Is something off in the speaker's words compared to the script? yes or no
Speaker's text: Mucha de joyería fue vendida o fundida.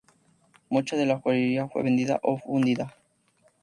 yes